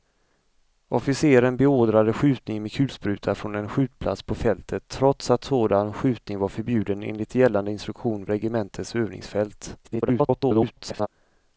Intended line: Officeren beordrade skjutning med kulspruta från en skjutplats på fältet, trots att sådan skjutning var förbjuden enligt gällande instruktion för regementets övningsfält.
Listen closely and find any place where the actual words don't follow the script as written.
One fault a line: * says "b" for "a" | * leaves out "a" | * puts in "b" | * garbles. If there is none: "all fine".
* leaves out "för"
* garbles